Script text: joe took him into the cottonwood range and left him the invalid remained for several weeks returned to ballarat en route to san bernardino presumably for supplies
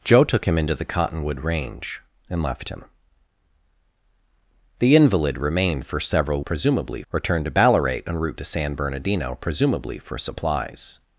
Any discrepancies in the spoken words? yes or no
yes